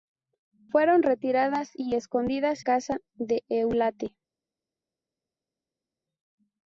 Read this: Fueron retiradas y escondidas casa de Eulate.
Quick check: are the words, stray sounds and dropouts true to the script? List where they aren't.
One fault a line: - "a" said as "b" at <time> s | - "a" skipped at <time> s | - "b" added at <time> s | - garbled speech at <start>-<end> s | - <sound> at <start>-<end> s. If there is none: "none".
none